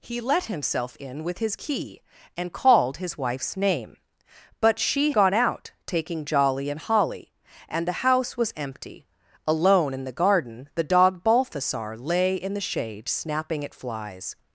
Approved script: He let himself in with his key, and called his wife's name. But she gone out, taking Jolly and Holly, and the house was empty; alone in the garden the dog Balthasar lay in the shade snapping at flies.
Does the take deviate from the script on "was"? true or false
false